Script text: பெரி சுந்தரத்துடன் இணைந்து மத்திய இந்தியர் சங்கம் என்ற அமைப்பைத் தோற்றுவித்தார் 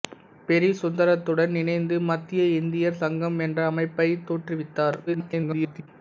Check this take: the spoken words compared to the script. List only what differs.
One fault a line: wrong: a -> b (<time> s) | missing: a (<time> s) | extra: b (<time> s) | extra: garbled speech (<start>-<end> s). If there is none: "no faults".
extra: garbled speech (5.1-5.9 s)